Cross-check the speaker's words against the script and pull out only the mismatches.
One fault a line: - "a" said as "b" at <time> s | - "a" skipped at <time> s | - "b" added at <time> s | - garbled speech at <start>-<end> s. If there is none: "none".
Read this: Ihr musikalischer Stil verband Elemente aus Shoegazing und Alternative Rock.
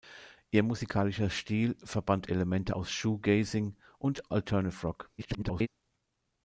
- garbled speech at 5.2-5.7 s